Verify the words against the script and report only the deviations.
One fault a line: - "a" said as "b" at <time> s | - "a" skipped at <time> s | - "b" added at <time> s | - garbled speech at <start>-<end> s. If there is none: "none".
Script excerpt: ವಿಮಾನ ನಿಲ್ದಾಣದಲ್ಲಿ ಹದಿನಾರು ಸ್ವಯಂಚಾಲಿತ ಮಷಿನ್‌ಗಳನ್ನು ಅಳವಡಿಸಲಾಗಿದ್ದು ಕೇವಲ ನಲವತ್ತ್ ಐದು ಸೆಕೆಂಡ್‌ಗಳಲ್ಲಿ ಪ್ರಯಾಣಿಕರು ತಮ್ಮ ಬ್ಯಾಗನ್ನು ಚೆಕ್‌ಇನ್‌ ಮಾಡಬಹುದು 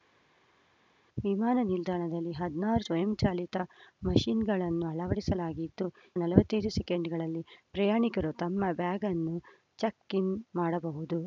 - "ಕೇವಲ" skipped at 5.9 s